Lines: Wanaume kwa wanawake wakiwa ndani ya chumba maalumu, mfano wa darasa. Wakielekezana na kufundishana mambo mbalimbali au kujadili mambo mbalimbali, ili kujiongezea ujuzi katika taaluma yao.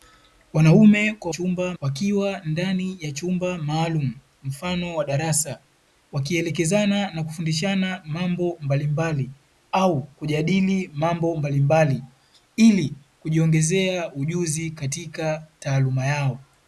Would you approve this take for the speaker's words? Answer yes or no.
no